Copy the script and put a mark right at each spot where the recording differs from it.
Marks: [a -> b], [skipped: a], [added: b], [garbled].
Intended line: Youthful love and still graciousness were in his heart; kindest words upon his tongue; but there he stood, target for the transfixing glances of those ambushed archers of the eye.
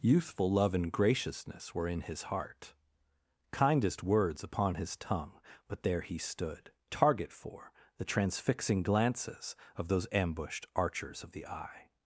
Youthful love and [skipped: still] graciousness were in his heart; kindest words upon his tongue; but there he stood, target for the transfixing glances of those ambushed archers of the eye.